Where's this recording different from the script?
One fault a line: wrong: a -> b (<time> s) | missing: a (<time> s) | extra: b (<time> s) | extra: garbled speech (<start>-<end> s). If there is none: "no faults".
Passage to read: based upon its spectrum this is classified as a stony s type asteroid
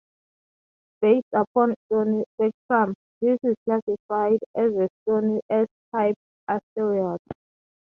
wrong: its -> stony (1.9 s)